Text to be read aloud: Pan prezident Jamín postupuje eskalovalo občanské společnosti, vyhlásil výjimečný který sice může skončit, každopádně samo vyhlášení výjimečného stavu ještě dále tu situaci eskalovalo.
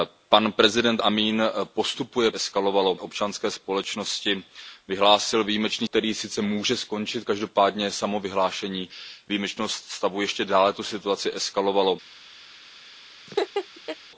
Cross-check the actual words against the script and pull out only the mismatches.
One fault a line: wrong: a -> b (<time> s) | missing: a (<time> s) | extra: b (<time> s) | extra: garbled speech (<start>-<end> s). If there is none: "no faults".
no faults